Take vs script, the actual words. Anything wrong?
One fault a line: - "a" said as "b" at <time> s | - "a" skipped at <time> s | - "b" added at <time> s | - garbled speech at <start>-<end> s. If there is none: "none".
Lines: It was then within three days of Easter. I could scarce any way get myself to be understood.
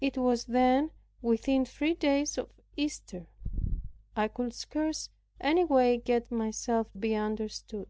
- "to" skipped at 6.9 s